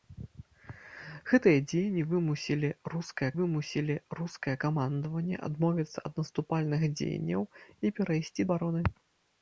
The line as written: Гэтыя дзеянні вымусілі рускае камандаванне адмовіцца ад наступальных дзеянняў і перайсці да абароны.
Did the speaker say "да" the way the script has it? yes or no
no